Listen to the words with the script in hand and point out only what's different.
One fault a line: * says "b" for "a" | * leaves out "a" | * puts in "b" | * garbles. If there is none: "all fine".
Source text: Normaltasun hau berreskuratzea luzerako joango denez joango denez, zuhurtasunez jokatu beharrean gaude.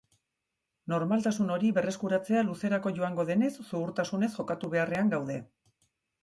* says "hori" for "hau"
* leaves out "joango denez"